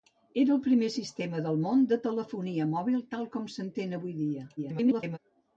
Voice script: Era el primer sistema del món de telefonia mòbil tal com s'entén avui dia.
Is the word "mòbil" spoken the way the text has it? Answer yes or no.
yes